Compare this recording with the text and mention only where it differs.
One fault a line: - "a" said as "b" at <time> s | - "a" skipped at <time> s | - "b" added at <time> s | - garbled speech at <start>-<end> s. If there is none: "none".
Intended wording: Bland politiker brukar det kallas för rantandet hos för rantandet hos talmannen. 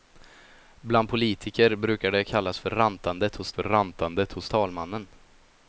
none